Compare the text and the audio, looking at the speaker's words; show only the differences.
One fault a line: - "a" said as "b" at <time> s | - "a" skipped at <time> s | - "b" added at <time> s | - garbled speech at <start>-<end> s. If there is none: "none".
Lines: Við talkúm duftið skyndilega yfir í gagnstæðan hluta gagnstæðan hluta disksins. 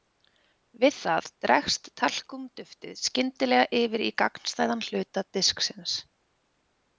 - "það dregst" added at 1.0 s
- "gagnstæðan hluta" skipped at 5.3 s